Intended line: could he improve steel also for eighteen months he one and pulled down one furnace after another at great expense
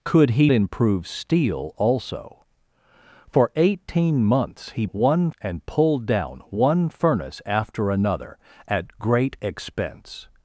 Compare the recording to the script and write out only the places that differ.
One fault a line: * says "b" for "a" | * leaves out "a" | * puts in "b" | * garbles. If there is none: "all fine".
all fine